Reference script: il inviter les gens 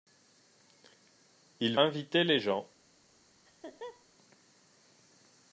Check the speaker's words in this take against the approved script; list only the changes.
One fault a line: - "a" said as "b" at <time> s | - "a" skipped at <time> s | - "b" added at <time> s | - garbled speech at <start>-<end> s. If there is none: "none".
none